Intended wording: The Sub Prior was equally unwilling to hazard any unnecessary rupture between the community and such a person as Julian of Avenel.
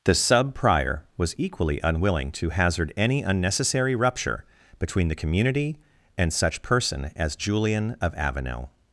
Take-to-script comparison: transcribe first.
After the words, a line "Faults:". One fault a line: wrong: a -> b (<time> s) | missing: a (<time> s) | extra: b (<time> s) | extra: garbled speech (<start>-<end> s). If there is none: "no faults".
The Sub Prior was equally unwilling to hazard any unnecessary rupture between the community and such person as Julian of Avenel.
Faults:
missing: a (6.6 s)